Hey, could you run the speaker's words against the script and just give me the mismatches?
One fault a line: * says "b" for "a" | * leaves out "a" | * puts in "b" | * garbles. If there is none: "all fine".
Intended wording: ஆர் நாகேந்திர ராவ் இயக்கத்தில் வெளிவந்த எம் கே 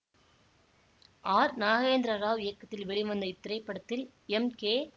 * puts in "இத்திரைப்படத்தில்"